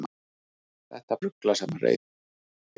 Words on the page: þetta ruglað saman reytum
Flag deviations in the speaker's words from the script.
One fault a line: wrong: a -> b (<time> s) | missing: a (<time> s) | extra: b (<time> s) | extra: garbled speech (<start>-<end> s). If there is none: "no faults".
no faults